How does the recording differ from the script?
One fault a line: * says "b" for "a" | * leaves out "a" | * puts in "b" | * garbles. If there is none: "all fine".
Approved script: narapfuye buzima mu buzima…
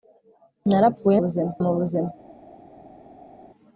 all fine